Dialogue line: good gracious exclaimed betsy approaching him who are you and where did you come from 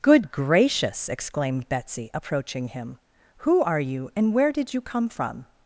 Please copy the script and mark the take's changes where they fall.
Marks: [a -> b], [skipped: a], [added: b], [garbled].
good gracious exclaimed betsy approaching him who are you and where did you come from